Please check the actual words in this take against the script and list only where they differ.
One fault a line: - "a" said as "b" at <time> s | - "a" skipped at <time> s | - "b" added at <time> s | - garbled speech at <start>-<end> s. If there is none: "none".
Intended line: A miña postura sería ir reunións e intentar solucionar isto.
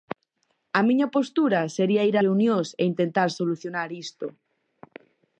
none